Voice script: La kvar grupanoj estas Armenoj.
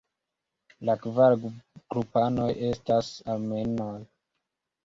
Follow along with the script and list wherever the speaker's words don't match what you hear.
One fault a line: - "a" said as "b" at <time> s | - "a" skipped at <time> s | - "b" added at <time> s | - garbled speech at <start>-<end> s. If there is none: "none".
none